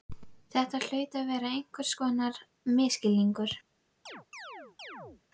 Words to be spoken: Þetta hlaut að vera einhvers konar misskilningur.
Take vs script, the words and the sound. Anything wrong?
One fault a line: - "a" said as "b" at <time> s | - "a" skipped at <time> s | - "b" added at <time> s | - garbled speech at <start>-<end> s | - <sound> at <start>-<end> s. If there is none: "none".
- chirp at 4.1-5.2 s